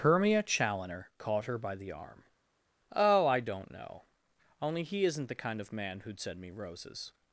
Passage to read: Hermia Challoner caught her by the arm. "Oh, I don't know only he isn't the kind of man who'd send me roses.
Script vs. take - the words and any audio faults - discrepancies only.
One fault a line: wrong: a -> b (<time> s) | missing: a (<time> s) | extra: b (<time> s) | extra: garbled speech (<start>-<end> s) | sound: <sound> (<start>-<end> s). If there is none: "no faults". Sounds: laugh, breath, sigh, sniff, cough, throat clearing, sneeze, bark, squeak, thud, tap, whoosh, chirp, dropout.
no faults